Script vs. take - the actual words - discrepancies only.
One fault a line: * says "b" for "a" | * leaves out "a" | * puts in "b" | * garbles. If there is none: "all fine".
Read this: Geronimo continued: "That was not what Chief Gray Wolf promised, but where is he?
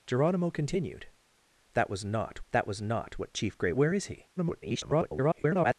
* puts in "that was not"
* leaves out "Wolf promised but"
* garbles